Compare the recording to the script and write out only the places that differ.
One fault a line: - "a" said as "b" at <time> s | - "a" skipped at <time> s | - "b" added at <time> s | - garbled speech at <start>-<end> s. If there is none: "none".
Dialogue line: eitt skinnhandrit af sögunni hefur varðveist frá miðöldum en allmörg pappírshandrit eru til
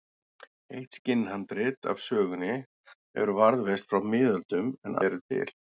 - "allmörg pappírshandrit" skipped at 5.0 s